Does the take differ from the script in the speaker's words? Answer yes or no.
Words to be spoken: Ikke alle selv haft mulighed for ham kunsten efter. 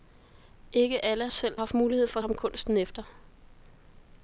no